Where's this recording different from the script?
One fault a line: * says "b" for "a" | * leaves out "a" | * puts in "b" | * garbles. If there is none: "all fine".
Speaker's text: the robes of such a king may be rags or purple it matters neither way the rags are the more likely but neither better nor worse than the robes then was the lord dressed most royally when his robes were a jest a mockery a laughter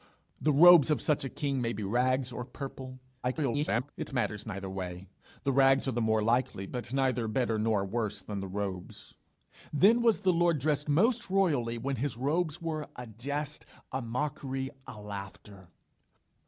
* garbles